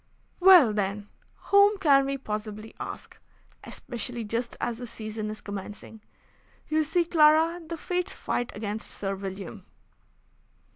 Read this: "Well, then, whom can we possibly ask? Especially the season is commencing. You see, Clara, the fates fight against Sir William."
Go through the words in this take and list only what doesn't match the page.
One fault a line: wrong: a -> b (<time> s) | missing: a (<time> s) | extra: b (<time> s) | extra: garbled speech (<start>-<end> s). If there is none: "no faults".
extra: just as (4.2 s)